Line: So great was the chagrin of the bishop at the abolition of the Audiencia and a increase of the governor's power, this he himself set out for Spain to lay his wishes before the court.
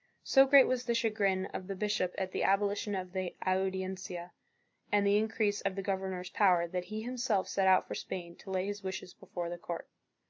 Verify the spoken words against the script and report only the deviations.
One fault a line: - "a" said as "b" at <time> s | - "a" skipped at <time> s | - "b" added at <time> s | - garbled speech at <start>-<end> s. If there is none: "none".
- "a" said as "the" at 5.1 s
- "this" said as "that" at 6.7 s